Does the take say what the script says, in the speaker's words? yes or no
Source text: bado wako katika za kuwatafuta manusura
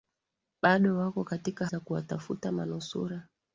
yes